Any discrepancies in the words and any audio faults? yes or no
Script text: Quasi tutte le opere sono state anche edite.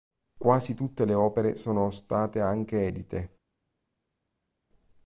no